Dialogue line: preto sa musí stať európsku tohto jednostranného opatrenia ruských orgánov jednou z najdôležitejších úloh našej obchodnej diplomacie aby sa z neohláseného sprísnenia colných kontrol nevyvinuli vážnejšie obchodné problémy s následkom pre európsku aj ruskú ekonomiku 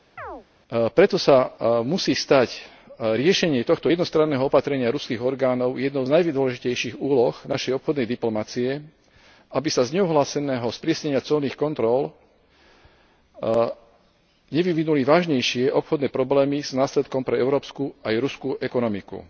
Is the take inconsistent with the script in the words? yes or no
yes